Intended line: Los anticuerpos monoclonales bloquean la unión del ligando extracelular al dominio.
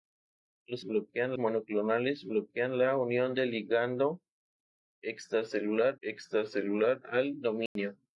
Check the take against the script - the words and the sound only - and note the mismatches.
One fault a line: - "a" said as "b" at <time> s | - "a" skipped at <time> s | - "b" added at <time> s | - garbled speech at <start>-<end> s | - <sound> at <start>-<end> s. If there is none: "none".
- "anticuerpos" said as "bloquean" at 0.8 s
- "extracelular" added at 6.0 s
- dropout at 7.7-7.8 s